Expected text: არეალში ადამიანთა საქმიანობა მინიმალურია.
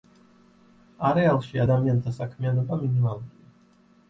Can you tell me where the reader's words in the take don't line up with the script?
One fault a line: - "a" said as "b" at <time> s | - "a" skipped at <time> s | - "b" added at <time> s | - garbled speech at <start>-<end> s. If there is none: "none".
none